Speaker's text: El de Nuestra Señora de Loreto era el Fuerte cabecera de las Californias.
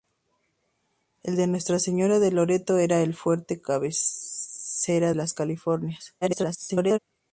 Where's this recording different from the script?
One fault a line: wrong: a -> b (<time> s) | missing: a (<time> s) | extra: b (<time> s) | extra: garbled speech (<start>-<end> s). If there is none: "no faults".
missing: de (5.1 s)
extra: garbled speech (6.2-7.0 s)